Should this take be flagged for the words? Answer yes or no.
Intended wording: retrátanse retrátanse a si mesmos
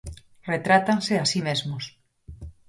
yes